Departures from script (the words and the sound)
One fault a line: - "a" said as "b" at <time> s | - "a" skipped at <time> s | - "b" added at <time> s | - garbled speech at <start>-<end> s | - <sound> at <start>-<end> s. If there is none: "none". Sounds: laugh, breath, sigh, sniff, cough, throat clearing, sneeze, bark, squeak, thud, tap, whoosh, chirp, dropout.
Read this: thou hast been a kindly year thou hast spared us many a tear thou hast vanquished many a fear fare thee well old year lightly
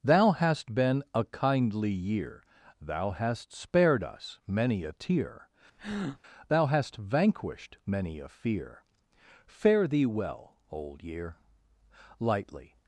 - breath at 5.8-6.2 s